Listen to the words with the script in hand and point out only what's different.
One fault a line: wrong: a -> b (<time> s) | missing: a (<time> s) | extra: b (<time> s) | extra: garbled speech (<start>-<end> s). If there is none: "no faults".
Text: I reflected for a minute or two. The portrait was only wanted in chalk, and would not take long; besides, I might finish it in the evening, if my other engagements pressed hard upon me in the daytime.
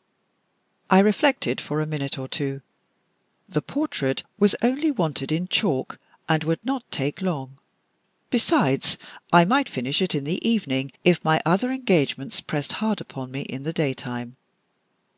no faults